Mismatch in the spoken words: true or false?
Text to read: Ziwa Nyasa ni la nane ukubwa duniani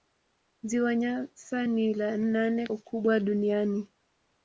false